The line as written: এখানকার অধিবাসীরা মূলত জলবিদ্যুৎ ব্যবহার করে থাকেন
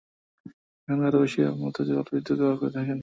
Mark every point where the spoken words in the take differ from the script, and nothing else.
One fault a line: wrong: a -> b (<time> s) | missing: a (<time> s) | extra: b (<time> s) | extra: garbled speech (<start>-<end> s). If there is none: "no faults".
no faults